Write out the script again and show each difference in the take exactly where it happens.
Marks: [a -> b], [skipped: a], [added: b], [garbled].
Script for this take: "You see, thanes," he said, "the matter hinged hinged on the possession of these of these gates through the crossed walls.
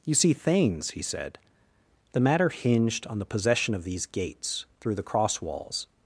"You see, thanes," he said, "the matter hinged [skipped: hinged] on the possession of these [skipped: of these] gates through the [crossed -> cross] walls.